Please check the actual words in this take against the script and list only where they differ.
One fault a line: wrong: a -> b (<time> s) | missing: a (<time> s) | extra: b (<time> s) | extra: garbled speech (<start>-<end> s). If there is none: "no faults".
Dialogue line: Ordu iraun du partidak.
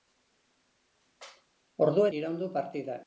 no faults